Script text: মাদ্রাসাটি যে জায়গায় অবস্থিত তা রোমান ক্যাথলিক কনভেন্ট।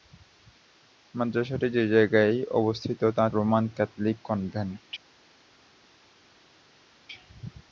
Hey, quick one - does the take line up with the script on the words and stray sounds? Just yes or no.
yes